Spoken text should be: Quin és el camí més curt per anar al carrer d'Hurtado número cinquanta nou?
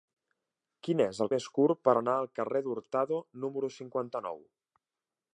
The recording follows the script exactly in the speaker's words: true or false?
false